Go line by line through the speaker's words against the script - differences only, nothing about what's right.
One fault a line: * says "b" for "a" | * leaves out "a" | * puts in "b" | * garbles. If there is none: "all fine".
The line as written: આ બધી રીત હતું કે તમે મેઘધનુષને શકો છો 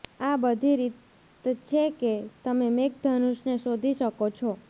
* says "છે" for "હતું"
* puts in "શોધી"